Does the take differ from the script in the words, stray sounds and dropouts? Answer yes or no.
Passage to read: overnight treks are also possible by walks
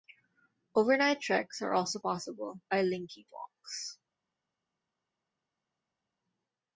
yes